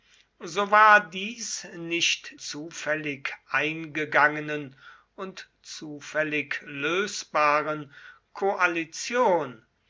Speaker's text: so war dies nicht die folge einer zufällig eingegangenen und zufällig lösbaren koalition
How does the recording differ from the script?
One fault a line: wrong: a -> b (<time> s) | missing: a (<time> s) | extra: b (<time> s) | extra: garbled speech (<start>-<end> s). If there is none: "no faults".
missing: die folge einer (2.3 s)